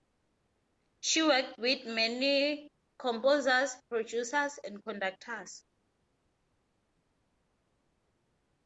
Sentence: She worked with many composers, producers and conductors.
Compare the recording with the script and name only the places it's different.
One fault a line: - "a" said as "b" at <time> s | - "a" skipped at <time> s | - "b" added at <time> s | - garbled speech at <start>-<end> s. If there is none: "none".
none